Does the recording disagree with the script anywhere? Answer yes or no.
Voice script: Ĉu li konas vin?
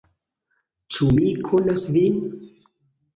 yes